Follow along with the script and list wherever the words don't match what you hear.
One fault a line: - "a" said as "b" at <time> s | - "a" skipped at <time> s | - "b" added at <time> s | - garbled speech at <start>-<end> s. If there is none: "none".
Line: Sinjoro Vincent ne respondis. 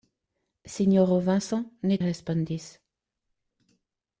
none